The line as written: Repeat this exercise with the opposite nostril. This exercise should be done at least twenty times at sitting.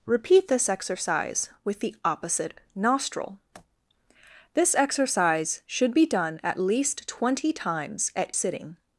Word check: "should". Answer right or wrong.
right